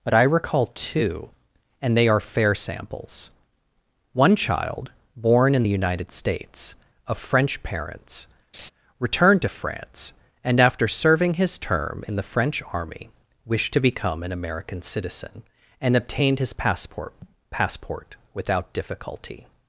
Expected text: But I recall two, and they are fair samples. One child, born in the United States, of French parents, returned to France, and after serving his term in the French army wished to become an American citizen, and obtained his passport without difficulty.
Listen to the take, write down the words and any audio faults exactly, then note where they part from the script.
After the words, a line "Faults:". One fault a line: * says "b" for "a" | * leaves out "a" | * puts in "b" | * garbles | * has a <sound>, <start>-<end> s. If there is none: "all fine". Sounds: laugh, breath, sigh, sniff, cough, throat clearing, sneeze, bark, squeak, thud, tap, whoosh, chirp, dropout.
But I recall two, and they are fair samples. One child, born in the United States, of French parents, returned to France, and after serving his term in the French army wished to become an American citizen, and obtained his passport passport without difficulty.
Faults:
* has a laugh, 8.5-8.7 s
* puts in "passport"